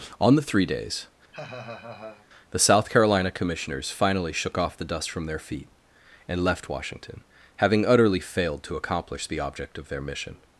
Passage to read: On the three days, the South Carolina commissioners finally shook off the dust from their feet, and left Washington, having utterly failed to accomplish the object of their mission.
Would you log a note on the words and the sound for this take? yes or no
yes